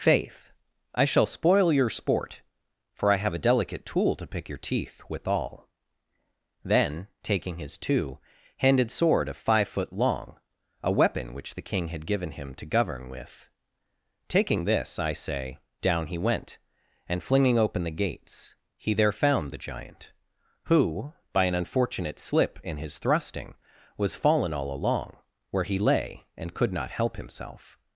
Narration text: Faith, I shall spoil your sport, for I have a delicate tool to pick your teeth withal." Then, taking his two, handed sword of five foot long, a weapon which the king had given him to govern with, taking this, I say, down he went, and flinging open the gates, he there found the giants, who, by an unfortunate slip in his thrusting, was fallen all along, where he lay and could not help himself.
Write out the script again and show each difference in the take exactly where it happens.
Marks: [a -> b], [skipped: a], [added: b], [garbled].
Faith, I shall spoil your sport, for I have a delicate tool to pick your teeth withal." Then, taking his two, handed sword of five foot long, a weapon which the king had given him to govern with, taking this, I say, down he went, and flinging open the gates, he there found the [giants, -> giant] who, by an unfortunate slip in his thrusting, was fallen all along, where he lay and could not help himself.